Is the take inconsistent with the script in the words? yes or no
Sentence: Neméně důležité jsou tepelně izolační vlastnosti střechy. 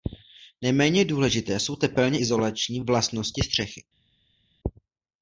no